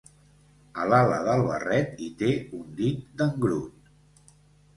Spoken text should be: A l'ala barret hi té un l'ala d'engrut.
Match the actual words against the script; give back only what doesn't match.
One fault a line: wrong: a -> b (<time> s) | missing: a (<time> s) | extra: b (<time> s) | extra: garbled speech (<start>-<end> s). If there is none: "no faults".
extra: del (1.3 s)
wrong: l'ala -> dit (2.8 s)